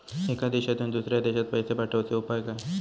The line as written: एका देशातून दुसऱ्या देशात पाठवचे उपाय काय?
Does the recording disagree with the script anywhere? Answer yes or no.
yes